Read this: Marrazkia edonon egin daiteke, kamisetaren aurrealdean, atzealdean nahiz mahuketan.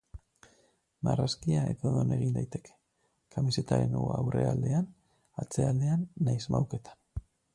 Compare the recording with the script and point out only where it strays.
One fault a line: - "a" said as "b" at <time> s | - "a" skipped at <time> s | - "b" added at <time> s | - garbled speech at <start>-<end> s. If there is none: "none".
none